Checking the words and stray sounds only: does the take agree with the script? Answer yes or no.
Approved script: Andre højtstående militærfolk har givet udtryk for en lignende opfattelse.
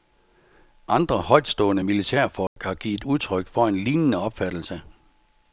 no